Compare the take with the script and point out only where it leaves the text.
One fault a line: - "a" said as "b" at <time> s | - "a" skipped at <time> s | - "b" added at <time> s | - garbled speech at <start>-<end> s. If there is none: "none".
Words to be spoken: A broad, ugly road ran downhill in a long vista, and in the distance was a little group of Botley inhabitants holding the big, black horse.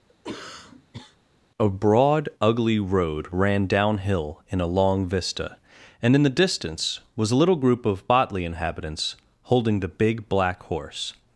none